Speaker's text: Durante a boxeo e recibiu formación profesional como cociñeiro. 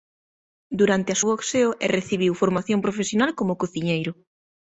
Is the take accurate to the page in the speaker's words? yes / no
yes